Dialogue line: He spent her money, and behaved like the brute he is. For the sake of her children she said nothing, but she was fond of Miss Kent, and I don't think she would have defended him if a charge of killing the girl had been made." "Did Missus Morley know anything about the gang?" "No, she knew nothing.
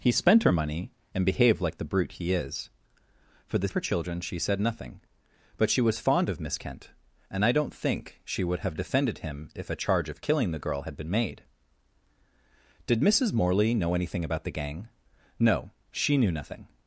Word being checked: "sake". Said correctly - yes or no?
no